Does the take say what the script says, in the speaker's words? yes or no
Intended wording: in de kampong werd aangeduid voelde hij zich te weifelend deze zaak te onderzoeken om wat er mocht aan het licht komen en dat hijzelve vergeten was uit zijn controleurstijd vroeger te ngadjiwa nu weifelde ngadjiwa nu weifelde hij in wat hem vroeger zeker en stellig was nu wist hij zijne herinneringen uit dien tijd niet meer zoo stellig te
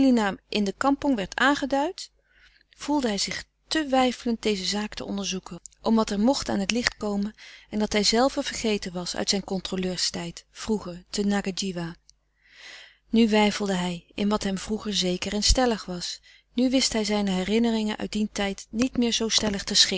no